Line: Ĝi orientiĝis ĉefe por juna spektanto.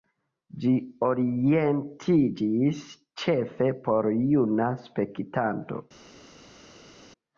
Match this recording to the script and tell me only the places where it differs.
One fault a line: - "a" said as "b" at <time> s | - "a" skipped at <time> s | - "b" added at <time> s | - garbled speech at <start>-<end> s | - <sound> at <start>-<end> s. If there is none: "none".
none